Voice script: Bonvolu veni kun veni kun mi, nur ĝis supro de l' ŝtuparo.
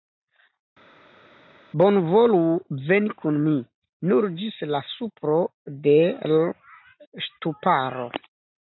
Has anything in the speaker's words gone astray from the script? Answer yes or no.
yes